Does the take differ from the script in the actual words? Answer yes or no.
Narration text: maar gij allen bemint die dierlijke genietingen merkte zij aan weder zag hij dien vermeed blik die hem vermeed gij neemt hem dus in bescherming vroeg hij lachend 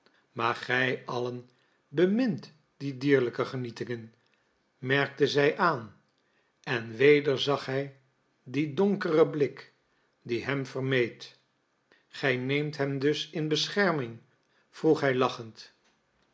yes